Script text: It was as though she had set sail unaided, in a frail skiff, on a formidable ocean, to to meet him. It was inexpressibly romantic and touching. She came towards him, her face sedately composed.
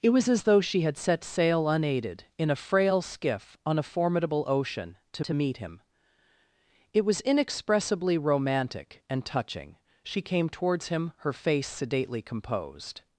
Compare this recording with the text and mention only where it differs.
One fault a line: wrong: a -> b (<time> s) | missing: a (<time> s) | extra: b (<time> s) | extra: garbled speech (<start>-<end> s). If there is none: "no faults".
no faults